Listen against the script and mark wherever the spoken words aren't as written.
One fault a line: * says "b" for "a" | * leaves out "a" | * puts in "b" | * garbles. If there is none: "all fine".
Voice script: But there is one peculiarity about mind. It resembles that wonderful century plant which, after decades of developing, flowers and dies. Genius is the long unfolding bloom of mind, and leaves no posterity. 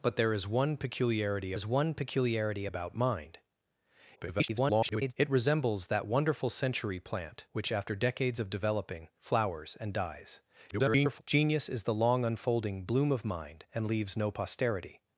* puts in "is one peculiarity"
* garbles
* garbles